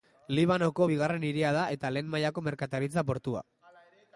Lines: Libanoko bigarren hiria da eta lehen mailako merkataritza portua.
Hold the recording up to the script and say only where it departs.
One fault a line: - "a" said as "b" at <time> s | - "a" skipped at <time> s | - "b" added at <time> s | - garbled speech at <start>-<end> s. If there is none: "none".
none